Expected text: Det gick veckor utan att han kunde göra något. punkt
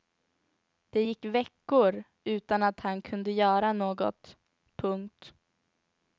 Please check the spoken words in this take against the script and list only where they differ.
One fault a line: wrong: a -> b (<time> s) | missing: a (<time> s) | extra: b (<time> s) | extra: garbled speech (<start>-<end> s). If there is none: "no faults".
no faults